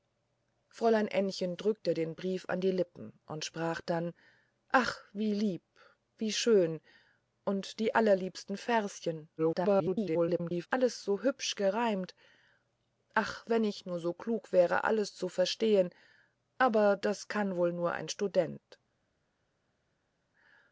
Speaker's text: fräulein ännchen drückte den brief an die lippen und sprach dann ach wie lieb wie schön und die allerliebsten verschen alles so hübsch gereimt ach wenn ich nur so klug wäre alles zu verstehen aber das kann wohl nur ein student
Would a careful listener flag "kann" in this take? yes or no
no